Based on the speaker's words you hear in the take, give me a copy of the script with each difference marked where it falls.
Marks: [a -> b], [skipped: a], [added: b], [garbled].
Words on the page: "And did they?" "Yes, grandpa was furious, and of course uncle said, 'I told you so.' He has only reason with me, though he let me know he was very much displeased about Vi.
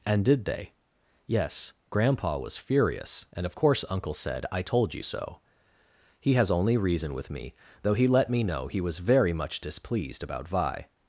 "And did they?" "Yes, grandpa was furious, and of course uncle said, 'I told you so.' He has only reason with me, though he let me know he was very much displeased about Vi.